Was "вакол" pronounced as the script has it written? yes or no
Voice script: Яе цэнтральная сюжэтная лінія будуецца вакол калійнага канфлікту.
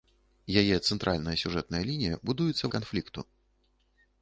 no